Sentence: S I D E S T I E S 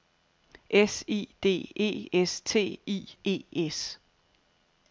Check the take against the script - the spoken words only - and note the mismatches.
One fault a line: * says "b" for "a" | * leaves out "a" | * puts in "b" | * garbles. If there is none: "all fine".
all fine